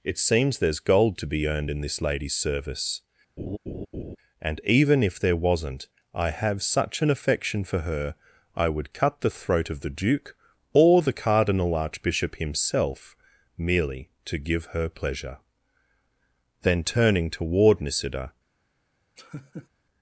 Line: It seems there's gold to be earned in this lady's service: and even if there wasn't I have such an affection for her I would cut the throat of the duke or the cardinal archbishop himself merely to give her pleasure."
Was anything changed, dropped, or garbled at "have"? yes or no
no